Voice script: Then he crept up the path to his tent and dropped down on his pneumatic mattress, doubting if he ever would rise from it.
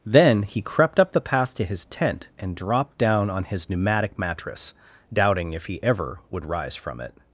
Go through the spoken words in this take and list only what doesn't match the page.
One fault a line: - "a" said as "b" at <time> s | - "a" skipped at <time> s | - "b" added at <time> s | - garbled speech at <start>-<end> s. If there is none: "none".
none